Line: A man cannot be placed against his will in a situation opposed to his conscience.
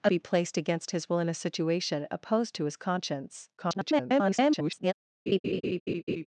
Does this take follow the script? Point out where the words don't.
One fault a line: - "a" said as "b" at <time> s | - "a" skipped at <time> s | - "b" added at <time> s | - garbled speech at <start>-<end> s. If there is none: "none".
- "man cannot" skipped at 0.1 s
- garbled speech at 3.6-4.9 s